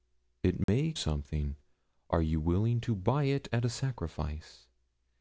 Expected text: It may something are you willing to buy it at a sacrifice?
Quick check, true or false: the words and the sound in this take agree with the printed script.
false